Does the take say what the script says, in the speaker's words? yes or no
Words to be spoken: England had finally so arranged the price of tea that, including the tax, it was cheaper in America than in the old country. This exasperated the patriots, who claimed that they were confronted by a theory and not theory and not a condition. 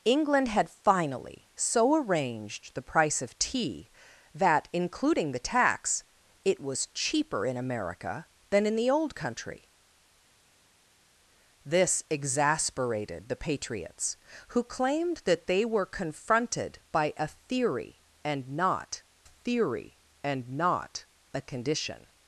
yes